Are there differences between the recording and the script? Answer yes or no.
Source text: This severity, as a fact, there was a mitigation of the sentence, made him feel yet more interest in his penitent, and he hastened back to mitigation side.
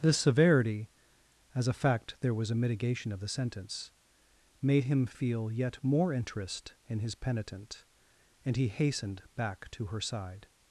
yes